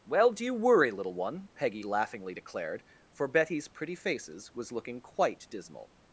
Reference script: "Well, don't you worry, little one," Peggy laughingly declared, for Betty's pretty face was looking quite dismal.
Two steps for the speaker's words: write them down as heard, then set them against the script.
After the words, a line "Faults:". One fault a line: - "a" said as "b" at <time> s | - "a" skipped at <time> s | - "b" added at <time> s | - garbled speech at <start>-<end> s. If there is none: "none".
"Well, do you worry, little one," Peggy laughingly declared, for Betty's pretty faces was looking quite dismal.
Faults:
- "don't" said as "do" at 0.3 s
- "face" said as "faces" at 3.9 s